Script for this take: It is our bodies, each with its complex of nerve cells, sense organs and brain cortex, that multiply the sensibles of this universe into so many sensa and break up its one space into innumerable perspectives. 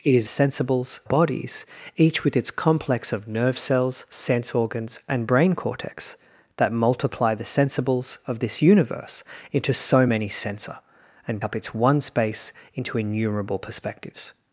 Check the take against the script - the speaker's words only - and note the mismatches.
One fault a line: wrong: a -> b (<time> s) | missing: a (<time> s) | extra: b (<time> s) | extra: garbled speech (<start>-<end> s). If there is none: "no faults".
wrong: our -> sensibles (0.3 s)
missing: break (11.4 s)